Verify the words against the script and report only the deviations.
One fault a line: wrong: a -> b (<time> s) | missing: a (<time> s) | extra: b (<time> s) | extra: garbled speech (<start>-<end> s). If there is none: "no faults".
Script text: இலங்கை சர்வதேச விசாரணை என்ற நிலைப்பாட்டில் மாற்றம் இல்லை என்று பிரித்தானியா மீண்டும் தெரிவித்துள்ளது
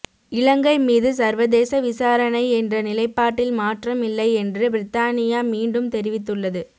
extra: மீது (0.8 s)